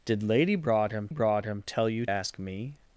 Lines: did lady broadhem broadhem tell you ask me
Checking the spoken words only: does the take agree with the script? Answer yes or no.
yes